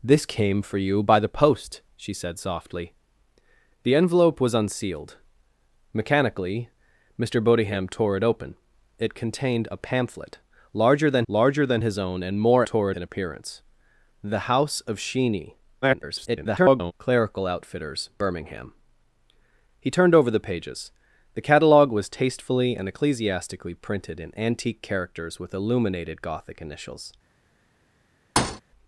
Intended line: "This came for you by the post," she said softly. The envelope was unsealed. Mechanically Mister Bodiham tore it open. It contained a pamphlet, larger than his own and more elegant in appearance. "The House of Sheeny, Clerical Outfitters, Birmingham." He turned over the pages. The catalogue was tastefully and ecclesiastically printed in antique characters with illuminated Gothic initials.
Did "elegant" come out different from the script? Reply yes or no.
yes